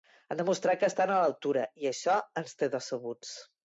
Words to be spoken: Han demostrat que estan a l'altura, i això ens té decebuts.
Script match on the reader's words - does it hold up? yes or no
yes